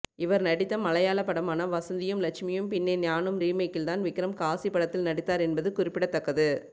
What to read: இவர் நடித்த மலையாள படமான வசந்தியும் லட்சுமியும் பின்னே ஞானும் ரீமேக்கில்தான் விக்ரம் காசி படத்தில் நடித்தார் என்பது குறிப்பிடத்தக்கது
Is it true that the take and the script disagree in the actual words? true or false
false